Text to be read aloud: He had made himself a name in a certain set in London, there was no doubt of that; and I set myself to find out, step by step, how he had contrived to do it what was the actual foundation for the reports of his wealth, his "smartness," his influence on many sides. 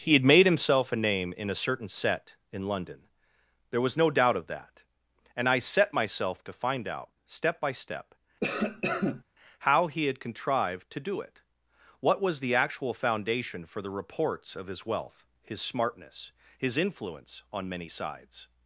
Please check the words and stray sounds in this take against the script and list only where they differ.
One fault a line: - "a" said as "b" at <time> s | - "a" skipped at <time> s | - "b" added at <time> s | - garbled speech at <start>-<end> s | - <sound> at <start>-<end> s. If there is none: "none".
- cough at 8.4-9.2 s